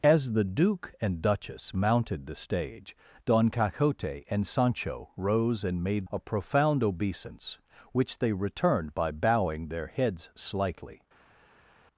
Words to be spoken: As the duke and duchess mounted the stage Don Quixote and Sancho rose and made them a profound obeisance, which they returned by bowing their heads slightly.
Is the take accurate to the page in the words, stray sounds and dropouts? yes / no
no